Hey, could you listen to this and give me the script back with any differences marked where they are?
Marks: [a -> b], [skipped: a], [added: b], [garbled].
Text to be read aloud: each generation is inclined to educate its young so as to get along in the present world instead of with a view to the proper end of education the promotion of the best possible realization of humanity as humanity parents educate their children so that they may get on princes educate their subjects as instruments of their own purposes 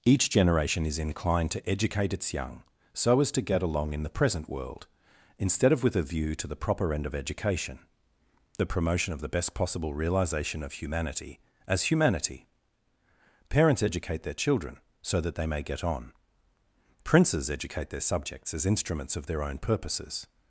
each generation is inclined to educate its young so as to get along in the present world instead of with a view to the proper end of education the promotion of the best possible realization of humanity as humanity parents educate their children so that they may get on princes educate their subjects as instruments of their own purposes